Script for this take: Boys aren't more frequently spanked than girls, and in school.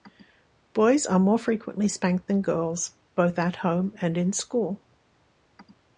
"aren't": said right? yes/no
no